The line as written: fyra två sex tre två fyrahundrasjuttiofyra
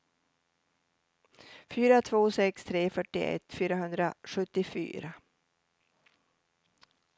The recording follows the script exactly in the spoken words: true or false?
false